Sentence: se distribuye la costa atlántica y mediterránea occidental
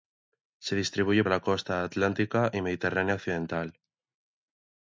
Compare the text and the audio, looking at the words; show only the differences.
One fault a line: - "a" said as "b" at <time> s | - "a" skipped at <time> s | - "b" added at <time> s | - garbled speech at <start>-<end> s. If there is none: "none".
none